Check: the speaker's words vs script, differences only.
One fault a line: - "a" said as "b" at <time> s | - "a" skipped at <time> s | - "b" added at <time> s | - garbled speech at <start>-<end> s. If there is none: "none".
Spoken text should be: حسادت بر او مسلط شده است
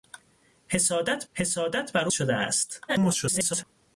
- "حسادت" added at 1.3 s
- "مسلط" skipped at 2.1 s
- garbled speech at 2.9-3.6 s